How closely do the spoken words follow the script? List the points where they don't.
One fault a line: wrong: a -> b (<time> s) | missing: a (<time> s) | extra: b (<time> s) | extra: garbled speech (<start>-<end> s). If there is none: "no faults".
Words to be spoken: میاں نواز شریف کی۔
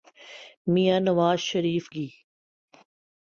no faults